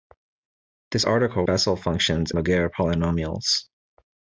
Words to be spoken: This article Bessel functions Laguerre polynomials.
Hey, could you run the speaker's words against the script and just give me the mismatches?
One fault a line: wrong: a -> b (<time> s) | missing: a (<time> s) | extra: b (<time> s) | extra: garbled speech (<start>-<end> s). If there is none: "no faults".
no faults